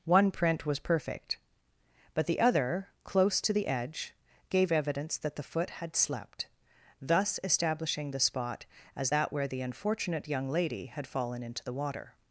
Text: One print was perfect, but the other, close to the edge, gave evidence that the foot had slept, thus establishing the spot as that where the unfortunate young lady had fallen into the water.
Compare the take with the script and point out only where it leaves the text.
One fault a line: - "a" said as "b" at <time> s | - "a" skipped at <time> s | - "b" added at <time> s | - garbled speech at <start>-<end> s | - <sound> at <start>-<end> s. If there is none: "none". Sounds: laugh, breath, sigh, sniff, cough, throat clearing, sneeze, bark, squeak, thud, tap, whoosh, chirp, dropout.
none